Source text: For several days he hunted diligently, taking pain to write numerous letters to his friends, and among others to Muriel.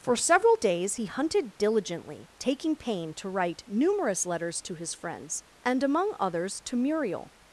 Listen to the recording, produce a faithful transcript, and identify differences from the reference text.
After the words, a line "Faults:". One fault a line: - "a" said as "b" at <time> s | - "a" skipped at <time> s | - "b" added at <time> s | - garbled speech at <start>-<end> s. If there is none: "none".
For several days he hunted diligently, taking pain to write numerous letters to his friends, and among others to Muriel.
Faults:
none